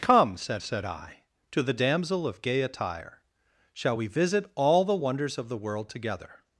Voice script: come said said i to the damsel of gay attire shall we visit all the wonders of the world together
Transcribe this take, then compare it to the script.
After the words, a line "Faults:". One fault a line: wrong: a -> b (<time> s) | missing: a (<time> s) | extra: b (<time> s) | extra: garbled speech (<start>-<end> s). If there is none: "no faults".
come said said i to the damsel of gay attire shall we visit all the wonders of the world together
Faults:
no faults